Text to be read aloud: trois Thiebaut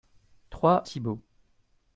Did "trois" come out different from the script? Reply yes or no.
no